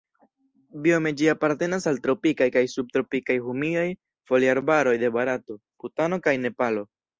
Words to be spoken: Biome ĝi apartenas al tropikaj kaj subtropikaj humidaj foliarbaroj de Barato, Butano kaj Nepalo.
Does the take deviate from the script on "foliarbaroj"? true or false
false